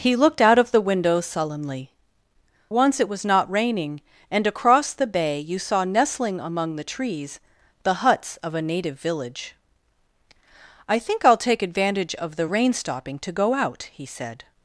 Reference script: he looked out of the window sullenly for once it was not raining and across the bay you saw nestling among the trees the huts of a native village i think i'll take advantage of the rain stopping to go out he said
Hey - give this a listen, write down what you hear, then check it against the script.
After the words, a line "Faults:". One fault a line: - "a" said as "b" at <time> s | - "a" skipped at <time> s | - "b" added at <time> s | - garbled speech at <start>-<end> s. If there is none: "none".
he looked out of the window sullenly once it was not raining and across the bay you saw nestling among the trees the huts of a native village i think i'll take advantage of the rain stopping to go out he said
Faults:
- "for" skipped at 1.9 s